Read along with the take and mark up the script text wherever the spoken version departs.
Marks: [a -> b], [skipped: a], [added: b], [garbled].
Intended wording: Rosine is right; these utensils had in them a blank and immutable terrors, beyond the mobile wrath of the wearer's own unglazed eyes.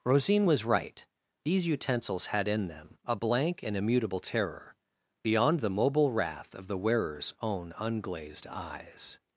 Rosine [is -> was] right; these utensils had in them a blank and immutable [terrors, -> terror] beyond the mobile wrath of the wearer's own unglazed eyes.